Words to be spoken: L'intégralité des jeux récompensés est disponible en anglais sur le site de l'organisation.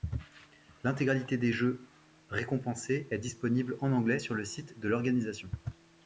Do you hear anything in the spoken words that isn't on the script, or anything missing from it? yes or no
no